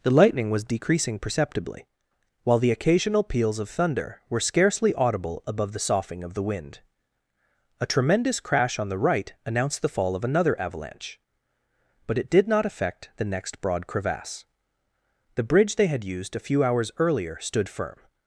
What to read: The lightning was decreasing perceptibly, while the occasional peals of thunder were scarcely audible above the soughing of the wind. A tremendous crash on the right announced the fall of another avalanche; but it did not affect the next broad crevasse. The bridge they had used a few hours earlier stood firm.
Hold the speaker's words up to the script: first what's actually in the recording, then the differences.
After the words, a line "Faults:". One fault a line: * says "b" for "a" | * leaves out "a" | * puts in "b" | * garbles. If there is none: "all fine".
The lightning was decreasing perceptibly, while the occasional peals of thunder were scarcely audible above the soughing of the wind. A tremendous crash on the right announced the fall of another avalanche; but it did not affect the next broad crevasse. The bridge they had used a few hours earlier stood firm.
Faults:
all fine